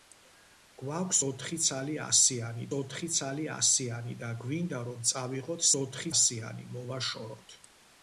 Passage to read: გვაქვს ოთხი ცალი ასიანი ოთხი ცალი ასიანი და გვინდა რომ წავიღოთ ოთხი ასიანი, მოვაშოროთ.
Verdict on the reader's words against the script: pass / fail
pass